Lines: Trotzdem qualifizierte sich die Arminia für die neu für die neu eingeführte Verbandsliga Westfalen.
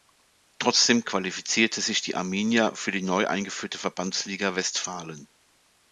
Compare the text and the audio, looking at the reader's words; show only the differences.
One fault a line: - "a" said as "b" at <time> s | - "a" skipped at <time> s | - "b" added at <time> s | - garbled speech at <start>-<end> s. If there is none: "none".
- "für die neu" skipped at 3.3 s